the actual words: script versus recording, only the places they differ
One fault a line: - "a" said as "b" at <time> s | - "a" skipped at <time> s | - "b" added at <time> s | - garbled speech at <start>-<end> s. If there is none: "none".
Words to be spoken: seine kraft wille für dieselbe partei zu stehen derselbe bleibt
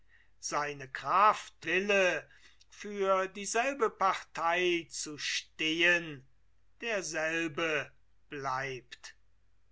none